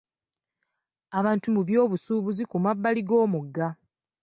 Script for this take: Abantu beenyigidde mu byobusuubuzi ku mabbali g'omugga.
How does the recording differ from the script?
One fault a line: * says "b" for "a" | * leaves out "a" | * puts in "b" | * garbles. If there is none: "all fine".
* leaves out "beenyigidde"